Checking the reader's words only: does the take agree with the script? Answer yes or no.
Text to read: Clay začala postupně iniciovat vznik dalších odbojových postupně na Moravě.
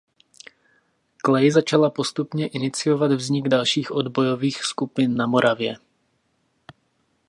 no